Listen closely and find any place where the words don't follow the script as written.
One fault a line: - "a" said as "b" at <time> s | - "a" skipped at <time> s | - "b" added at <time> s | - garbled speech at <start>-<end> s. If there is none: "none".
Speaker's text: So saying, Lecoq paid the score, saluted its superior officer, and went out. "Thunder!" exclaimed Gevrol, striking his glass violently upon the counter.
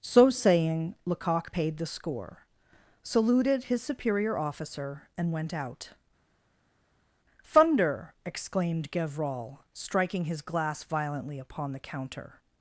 - "its" said as "his" at 3.6 s